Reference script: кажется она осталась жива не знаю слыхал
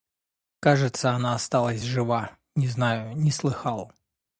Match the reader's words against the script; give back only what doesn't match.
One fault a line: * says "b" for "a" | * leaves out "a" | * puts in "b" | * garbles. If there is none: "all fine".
* puts in "не"